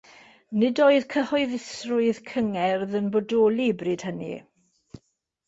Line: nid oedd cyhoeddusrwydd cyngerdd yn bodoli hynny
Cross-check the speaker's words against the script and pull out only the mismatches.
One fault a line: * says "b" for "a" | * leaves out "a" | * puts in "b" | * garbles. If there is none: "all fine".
* puts in "bryd"